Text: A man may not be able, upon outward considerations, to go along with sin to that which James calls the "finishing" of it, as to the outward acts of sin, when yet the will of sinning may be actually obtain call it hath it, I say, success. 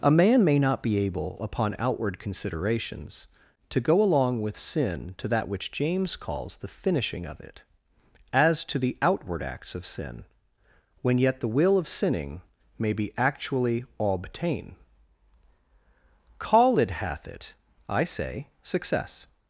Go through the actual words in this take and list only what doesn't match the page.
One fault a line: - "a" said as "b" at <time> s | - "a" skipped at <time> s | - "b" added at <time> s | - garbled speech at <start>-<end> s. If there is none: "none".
none